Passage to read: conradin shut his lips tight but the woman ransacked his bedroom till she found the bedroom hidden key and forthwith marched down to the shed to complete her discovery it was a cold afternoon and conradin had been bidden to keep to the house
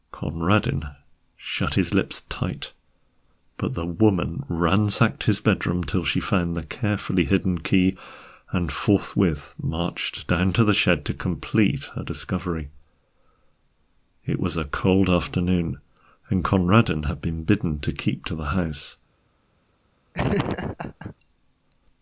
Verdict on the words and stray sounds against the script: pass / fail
fail